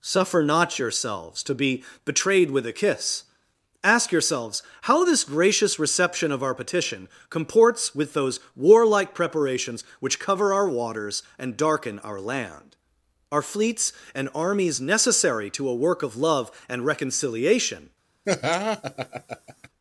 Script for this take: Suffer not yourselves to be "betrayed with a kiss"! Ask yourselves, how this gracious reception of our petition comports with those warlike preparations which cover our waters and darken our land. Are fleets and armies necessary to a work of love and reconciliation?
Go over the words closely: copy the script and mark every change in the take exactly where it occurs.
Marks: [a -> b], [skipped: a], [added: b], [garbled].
Suffer not yourselves to be "betrayed with a kiss"! Ask yourselves, how this gracious reception of our petition comports with those warlike preparations which cover our waters and darken our land. Are fleets and armies necessary to a work of love and reconciliation?